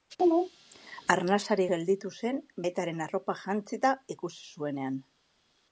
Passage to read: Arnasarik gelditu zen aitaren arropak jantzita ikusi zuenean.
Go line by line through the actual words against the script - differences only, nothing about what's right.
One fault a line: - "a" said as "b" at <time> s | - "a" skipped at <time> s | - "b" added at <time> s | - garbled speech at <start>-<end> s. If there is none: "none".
none